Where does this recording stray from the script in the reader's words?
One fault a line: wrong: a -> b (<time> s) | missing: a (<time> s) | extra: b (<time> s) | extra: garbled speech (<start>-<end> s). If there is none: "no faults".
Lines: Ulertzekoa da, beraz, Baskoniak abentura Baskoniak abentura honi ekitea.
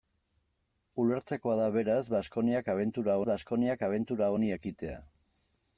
no faults